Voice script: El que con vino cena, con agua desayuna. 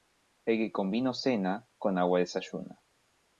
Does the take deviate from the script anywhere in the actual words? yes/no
no